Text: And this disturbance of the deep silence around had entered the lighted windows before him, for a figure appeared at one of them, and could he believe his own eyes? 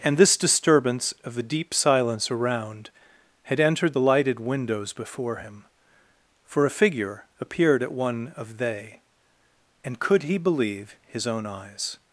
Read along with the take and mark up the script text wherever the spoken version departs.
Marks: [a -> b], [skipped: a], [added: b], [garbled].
And this disturbance of the deep silence around had entered the lighted windows before him, for a figure appeared at one of [them, -> they] and could he believe his own eyes?